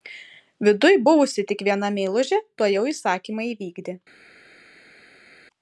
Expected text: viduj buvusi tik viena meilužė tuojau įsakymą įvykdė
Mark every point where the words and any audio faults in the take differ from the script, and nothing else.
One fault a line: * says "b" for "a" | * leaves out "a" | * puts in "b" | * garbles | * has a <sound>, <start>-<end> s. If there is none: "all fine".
all fine